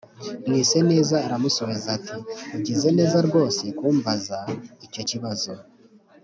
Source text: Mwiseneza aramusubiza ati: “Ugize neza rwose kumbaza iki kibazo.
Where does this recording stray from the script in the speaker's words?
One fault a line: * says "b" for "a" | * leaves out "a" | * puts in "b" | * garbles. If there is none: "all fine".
* says "icyo" for "iki"